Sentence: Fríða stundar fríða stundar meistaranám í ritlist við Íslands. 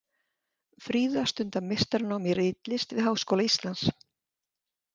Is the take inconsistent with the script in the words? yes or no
yes